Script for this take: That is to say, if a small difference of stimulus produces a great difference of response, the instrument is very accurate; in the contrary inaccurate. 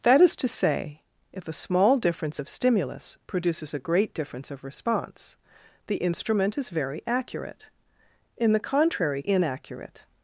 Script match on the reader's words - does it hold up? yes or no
yes